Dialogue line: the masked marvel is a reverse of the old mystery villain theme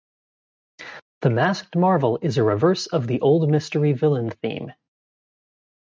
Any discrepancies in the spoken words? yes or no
no